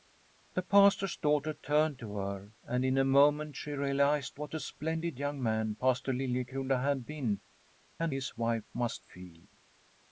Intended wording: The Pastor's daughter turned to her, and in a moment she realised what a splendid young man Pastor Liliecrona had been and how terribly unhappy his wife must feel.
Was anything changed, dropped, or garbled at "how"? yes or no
yes